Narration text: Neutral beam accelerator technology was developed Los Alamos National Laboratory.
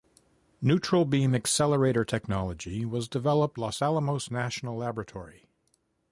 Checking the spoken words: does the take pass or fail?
pass